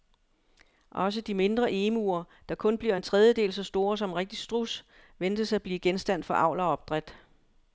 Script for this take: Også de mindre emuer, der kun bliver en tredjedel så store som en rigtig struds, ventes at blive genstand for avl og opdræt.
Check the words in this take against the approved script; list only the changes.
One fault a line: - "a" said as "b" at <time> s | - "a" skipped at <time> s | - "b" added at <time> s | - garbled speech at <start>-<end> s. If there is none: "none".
none